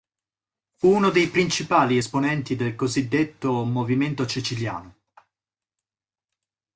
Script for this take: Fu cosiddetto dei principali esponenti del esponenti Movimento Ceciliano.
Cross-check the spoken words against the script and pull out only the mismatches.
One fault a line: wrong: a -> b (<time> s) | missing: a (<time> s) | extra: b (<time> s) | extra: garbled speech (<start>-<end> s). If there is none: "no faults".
wrong: cosiddetto -> uno (0.9 s)
wrong: esponenti -> cosiddetto (2.8 s)